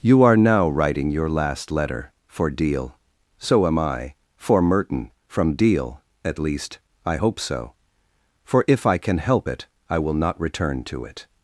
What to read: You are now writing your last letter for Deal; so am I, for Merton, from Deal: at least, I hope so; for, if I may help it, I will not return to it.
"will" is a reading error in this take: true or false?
false